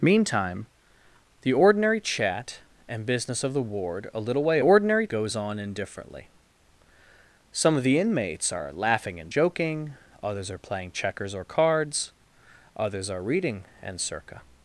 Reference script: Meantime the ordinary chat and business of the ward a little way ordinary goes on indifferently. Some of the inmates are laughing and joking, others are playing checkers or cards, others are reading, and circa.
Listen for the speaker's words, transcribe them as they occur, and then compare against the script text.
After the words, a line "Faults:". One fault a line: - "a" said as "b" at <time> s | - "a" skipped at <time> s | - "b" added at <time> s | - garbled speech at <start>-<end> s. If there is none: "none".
Meantime the ordinary chat and business of the ward a little way ordinary goes on indifferently. Some of the inmates are laughing and joking, others are playing checkers or cards, others are reading, and circa.
Faults:
none